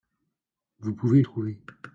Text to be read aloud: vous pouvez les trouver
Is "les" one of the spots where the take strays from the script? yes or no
yes